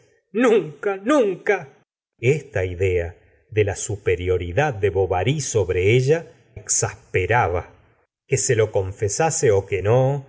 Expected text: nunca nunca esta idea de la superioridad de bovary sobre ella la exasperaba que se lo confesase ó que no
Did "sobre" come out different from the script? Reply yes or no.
no